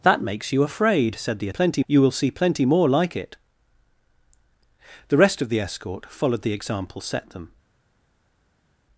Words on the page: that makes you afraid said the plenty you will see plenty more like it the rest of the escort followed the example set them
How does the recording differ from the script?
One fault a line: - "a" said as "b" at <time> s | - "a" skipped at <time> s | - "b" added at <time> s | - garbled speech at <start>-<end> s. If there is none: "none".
none